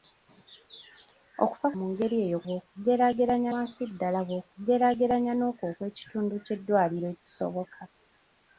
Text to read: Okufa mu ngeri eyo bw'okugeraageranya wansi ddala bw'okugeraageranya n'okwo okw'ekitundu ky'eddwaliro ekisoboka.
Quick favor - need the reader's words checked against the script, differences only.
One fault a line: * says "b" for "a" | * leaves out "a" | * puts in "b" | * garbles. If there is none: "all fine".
all fine